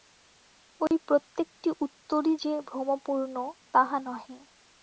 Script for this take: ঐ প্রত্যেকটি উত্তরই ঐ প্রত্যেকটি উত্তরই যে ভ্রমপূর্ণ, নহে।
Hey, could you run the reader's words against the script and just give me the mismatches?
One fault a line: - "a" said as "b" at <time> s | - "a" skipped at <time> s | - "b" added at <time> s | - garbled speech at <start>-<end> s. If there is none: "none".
- "ঐ প্রত্যেকটি উত্তরই" skipped at 2.4 s
- "তাহা" added at 3.7 s